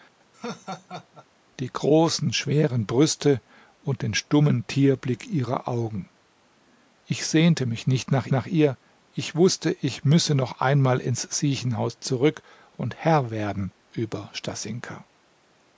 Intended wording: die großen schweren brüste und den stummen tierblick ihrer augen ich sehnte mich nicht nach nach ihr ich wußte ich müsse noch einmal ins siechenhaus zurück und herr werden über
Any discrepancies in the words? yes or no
no